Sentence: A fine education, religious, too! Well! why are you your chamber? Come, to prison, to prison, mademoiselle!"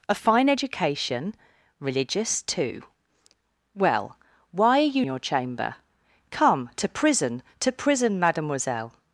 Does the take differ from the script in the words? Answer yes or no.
no